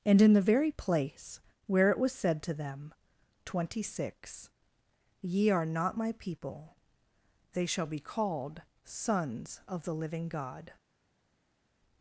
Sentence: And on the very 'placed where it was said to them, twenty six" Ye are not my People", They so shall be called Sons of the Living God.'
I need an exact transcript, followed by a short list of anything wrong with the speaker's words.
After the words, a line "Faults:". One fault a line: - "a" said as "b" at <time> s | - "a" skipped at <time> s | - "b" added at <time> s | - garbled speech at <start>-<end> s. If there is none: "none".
And in the very 'place where it was said to them, twenty six" Ye are not my People", They shall be called Sons of the Living God.'
Faults:
- "on" said as "in" at 0.2 s
- "placed" said as "place" at 0.7 s
- "so" skipped at 7.7 s